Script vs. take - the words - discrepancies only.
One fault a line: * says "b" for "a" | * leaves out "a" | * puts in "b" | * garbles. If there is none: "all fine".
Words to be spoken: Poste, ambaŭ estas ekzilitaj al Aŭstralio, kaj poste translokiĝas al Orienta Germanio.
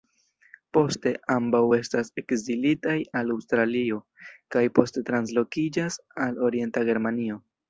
all fine